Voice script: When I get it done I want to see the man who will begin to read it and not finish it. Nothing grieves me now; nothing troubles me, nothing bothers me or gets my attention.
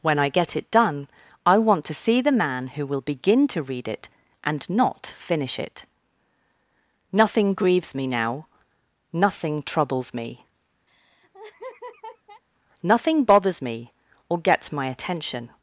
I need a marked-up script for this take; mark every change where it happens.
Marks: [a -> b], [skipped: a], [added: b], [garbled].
When I get it done I want to see the man who will begin to read it and not finish it. Nothing grieves me now; nothing troubles me, nothing bothers me or gets my attention.